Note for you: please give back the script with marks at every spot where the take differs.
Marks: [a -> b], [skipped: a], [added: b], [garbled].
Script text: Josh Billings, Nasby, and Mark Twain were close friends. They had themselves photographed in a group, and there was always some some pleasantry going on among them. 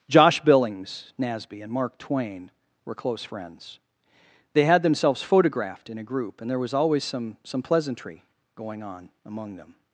Josh Billings, Nasby, and Mark Twain were close friends. They had themselves photographed in a group, and there was always some some pleasantry going on among them.